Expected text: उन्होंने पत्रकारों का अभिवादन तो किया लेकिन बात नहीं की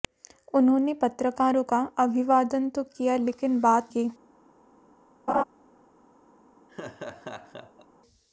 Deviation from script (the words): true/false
true